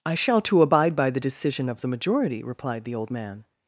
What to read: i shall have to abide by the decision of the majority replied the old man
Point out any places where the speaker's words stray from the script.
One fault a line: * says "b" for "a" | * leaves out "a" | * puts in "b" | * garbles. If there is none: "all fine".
* leaves out "have"